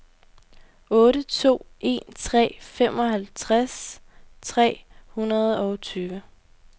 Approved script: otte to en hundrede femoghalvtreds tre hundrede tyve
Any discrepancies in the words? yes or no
yes